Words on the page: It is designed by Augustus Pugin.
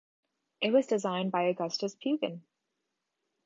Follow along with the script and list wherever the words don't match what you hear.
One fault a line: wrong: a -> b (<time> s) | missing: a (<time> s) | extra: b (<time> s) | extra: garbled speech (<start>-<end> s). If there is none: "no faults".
wrong: is -> was (0.7 s)